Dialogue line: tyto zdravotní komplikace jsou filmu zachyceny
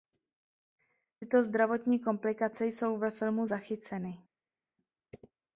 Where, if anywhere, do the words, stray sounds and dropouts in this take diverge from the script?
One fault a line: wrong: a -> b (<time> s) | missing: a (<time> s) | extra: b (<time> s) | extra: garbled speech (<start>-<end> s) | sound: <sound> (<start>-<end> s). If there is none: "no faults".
extra: ve (3.0 s)